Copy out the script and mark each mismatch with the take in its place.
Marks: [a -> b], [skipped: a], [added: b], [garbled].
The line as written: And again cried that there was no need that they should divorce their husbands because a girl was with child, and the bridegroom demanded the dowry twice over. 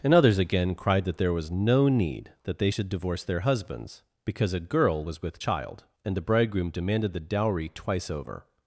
And [added: others] again cried that there was no need that they should divorce their husbands because a girl was with child, and the bridegroom demanded the dowry twice over.